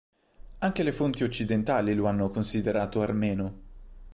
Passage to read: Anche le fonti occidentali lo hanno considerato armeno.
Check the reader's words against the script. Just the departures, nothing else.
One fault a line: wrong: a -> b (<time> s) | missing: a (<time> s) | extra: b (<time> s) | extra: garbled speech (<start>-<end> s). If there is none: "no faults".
no faults